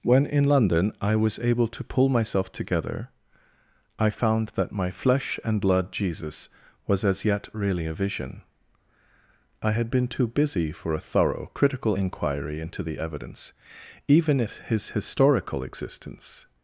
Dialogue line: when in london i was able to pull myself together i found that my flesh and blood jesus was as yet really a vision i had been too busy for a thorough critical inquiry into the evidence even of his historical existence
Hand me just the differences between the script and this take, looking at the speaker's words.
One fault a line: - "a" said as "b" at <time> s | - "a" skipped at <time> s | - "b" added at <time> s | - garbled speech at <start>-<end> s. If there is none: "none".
- "of" said as "if" at 14.4 s